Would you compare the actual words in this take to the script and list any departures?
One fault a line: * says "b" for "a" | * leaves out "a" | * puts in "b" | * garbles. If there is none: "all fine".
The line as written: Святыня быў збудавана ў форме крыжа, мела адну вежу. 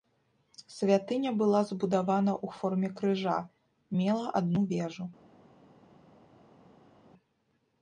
* says "была" for "быў"